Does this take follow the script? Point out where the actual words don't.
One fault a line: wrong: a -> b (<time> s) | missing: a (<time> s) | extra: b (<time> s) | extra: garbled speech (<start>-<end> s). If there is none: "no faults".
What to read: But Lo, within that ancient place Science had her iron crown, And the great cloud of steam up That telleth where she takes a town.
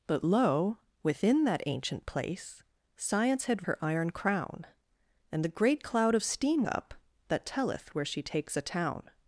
no faults